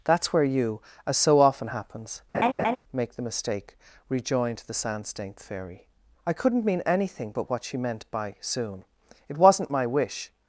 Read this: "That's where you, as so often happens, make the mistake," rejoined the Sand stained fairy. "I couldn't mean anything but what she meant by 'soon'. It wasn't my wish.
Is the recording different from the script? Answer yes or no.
no